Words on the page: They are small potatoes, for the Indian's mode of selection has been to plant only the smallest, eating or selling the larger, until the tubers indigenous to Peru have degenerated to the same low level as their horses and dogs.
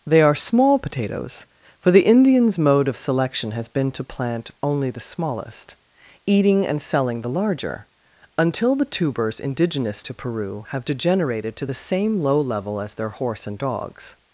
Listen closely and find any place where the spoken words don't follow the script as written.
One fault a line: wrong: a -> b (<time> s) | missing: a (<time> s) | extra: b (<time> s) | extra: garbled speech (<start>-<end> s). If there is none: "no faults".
wrong: or -> and (6.7 s)
wrong: horses -> horse (13.1 s)